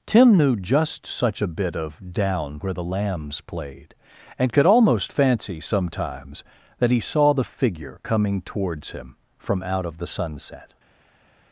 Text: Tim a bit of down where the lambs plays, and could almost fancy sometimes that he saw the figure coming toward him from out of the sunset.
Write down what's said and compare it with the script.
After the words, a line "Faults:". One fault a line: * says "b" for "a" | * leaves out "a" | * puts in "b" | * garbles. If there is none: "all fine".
Tim knew just such a bit of down where the lambs played, and could almost fancy sometimes that he saw the figure coming towards him from out of the sunset.
Faults:
* puts in "knew just such"
* says "played" for "plays"
* says "towards" for "toward"